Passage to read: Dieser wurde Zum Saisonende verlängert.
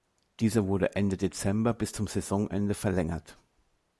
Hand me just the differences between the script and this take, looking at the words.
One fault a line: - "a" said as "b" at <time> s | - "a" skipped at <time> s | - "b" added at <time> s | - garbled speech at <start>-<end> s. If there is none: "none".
- "Ende Dezember bis" added at 0.9 s